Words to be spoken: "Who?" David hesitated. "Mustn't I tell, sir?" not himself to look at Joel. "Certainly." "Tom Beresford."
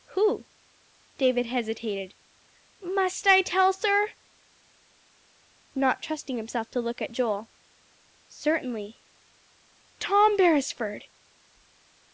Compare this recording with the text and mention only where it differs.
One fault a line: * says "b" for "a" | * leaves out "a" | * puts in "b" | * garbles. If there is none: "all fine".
* says "Must" for "Mustn't"
* puts in "trusting"